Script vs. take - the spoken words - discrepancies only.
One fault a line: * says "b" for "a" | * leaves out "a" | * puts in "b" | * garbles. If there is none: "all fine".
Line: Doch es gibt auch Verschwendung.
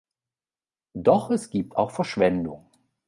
all fine